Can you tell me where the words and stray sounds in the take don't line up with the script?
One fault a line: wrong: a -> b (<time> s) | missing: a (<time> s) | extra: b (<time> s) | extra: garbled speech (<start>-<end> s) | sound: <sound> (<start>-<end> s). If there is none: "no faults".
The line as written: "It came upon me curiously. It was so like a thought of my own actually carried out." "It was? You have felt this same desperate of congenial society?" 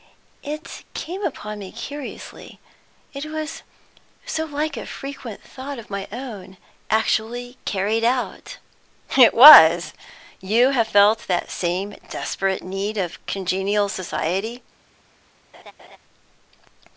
extra: frequent (4.9 s)
wrong: this -> that (11.3 s)
extra: need (12.6 s)
sound: laugh (15.5-16.0 s)